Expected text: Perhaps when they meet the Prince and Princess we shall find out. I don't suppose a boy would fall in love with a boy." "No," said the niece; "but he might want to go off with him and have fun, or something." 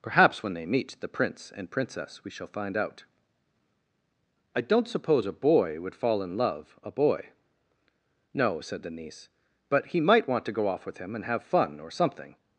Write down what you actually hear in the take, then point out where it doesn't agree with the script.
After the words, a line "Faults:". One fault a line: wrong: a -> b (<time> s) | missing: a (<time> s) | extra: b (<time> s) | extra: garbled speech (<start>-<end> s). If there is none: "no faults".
Perhaps when they meet the Prince and Princess we shall find out. I don't suppose a boy would fall in love a boy." "No," said the niece; "but he might want to go off with him and have fun, or something."
Faults:
missing: with (6.8 s)